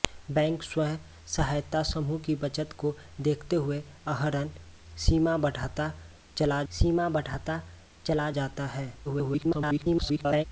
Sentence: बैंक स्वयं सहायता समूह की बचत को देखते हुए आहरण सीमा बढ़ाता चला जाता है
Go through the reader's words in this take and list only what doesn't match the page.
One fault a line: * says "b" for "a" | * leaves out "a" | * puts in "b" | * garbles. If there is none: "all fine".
* puts in "सीमा बढ़ाता चला"
* garbles